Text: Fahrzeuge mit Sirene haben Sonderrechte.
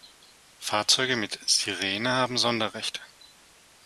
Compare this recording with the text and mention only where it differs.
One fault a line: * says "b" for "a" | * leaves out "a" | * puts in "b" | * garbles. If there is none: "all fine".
all fine